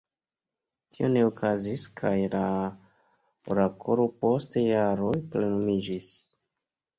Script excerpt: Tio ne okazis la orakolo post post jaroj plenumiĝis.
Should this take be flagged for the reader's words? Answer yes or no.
yes